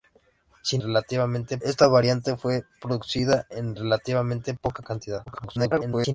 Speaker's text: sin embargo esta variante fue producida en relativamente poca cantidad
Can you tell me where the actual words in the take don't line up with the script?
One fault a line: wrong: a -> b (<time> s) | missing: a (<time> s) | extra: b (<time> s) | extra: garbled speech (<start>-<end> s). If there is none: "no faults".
wrong: embargo -> relativamente (0.8 s)
extra: garbled speech (5.3-6.1 s)